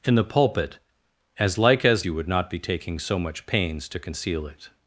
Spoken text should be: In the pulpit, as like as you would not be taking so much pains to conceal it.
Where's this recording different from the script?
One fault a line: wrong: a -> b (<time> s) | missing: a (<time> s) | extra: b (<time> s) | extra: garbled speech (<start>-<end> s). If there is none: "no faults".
no faults